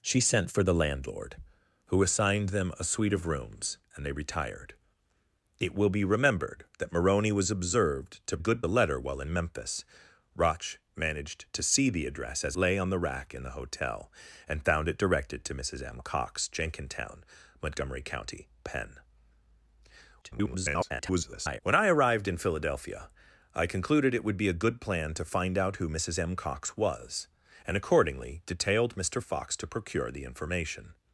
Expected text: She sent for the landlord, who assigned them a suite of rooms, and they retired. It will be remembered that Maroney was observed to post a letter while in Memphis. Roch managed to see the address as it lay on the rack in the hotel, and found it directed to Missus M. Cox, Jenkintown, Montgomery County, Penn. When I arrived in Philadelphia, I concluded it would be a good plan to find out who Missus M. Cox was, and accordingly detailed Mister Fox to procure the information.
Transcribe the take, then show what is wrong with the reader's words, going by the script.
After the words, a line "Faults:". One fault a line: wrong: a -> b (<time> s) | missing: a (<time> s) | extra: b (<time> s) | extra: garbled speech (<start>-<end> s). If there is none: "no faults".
She sent for the landlord, who assigned them a suite of rooms, and they retired. It will be remembered that Maroney was observed to good a letter while in Memphis. Roch managed to see the address as lay on the rack in the hotel, and found it directed to Missus M. Cox, Jenkintown, Montgomery County, Penn. [garbled] When I arrived in Philadelphia, I concluded it would be a good plan to find out who Missus M. Cox was, and accordingly detailed Mister Fox to procure the information.
Faults:
wrong: post -> good (8.4 s)
missing: it (12.5 s)
extra: garbled speech (20.2-21.6 s)